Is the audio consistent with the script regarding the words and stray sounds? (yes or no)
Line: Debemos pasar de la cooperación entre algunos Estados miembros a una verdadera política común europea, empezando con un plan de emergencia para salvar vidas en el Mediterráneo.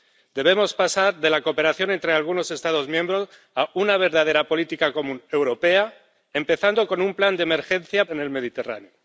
no